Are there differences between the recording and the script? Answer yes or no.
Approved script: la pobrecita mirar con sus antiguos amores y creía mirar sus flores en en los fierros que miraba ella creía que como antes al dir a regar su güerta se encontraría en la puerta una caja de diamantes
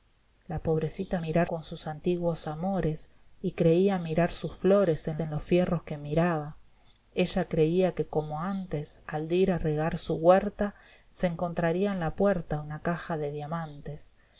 no